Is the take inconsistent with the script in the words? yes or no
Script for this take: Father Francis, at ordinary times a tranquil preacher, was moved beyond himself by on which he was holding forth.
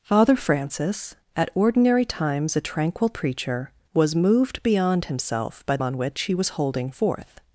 no